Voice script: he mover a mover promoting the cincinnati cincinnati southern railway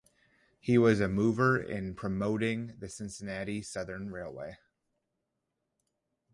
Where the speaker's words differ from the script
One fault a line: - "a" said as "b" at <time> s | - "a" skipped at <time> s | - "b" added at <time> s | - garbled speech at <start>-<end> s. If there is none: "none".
- "mover" said as "was" at 0.8 s
- "in" added at 1.6 s
- "cincinnati" skipped at 3.6 s